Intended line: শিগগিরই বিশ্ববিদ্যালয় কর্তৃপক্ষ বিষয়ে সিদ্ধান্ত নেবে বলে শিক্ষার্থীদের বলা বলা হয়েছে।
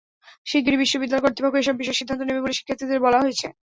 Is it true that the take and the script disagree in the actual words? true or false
true